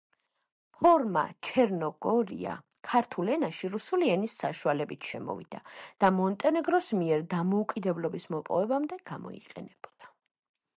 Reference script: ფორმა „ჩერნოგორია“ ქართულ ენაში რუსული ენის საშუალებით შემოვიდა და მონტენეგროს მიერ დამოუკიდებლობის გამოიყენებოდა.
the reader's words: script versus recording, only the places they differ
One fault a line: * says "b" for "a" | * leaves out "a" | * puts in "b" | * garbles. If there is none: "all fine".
* puts in "მოპოვებამდე"